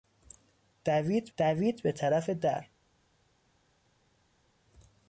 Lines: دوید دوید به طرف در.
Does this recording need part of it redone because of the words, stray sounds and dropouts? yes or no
no